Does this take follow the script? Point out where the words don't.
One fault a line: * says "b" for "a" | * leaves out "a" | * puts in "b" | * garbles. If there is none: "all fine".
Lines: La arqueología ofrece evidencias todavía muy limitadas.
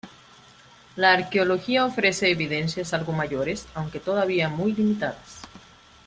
* puts in "algo mayores aunque"